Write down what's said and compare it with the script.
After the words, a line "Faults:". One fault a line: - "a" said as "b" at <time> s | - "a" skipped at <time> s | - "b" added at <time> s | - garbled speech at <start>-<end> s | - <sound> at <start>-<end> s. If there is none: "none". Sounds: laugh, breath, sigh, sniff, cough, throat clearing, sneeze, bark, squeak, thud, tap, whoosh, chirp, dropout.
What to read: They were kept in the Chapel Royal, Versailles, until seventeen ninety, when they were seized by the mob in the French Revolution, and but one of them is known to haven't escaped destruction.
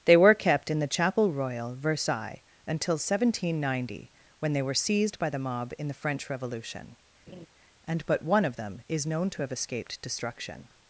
They were kept in the Chapel Royal, Versailles, until seventeen ninety, when they were seized by the mob in the French Revolution, and but one of them is known to have escaped destruction.
Faults:
- laugh at 7.3-7.5 s
- "haven't" said as "have" at 9.4 s